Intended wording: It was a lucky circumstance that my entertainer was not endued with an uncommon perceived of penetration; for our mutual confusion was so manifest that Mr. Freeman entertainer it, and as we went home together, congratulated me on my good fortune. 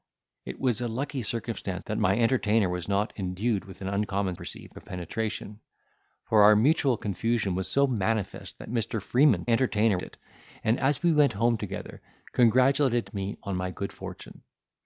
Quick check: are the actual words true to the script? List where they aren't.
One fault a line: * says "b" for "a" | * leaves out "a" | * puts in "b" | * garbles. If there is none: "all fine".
all fine